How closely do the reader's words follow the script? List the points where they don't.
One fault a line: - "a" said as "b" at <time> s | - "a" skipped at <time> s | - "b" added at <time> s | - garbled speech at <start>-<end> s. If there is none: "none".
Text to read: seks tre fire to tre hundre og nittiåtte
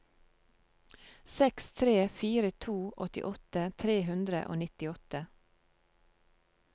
- "åttiåtte" added at 3.1 s